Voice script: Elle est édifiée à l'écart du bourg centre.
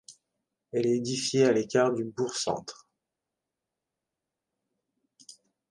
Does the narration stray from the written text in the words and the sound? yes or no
no